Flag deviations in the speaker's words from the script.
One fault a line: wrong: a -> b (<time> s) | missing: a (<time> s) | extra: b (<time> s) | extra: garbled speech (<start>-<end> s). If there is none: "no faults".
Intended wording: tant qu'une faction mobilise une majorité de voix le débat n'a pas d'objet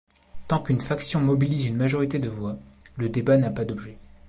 no faults